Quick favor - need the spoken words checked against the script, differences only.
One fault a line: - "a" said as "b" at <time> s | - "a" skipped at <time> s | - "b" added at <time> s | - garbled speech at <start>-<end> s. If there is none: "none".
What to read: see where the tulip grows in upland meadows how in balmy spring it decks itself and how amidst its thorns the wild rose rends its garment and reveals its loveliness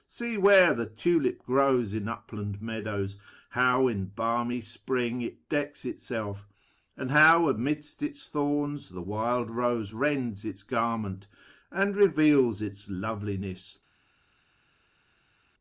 none